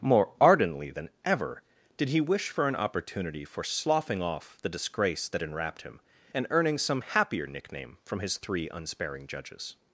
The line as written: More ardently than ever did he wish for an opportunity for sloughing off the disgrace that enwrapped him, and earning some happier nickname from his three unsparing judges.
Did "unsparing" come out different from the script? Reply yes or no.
no